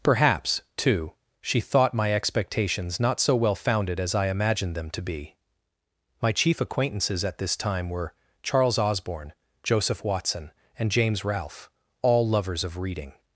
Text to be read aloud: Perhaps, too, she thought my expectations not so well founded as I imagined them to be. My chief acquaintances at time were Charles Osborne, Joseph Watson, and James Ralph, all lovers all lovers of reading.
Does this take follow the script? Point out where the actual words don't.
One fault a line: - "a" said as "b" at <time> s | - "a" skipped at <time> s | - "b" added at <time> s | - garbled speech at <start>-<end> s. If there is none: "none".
- "this" added at 7.4 s
- "all lovers" skipped at 12.6 s